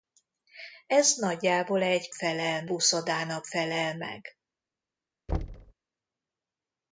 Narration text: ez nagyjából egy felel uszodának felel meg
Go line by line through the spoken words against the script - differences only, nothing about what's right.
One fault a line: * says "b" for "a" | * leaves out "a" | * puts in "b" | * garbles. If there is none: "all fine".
all fine